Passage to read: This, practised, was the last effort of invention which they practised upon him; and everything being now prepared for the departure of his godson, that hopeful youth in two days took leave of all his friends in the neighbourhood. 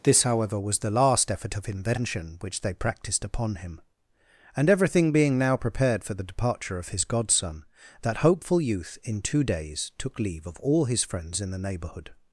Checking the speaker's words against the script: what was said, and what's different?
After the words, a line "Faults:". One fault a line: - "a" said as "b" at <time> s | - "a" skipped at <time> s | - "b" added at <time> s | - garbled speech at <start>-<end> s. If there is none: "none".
This, however, was the last effort of invention which they practised upon him; and everything being now prepared for the departure of his godson, that hopeful youth in two days took leave of all his friends in the neighbourhood.
Faults:
- "practised" said as "however" at 0.2 s